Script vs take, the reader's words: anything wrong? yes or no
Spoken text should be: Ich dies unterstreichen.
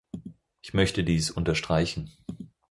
yes